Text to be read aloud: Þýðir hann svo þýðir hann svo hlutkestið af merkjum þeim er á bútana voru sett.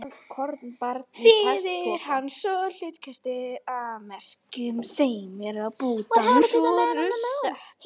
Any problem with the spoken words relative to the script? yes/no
yes